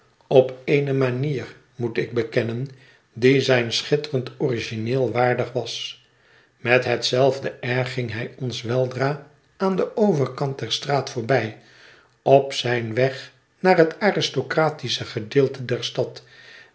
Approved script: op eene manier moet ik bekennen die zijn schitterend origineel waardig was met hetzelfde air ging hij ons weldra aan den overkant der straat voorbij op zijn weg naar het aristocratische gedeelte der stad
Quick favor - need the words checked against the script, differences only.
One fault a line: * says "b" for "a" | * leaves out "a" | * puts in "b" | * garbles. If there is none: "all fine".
all fine